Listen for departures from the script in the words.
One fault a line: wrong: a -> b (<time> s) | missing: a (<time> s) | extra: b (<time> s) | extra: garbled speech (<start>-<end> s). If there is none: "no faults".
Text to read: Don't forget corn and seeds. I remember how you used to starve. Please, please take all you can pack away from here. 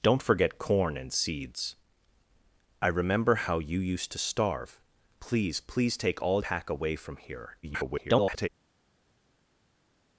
missing: you can (6.4 s)
extra: garbled speech (7.6-8.5 s)